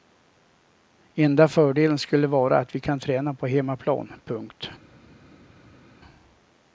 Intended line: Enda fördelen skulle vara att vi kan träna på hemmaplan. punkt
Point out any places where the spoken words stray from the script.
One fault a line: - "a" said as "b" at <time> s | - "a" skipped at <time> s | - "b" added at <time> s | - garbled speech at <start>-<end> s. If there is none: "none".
none